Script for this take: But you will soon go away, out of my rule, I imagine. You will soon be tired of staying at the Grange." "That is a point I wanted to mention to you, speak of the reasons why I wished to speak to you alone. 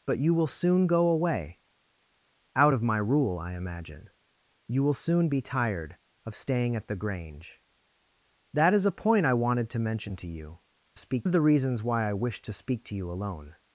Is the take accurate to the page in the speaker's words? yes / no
yes